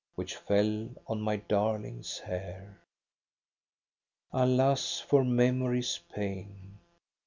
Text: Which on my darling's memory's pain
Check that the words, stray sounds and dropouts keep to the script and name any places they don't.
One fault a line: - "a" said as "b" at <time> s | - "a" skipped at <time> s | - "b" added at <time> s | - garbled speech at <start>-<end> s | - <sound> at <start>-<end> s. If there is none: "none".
- "fell" added at 0.3 s
- "hair Alas for" added at 2.2 s